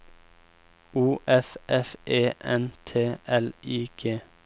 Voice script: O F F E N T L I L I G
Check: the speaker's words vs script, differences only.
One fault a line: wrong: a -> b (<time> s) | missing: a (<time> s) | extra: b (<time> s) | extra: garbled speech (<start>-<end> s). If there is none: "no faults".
missing: L I (3.9 s)